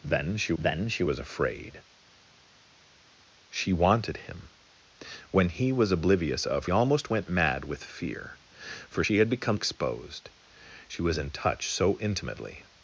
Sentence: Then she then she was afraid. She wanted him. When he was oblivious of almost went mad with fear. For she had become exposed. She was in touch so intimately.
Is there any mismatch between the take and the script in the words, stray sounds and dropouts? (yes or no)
no